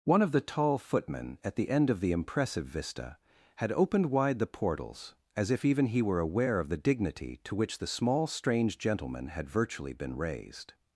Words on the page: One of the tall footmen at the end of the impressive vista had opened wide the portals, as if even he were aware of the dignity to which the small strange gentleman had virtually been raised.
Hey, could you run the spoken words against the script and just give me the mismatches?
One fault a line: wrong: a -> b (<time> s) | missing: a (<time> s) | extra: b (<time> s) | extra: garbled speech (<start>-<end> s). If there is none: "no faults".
no faults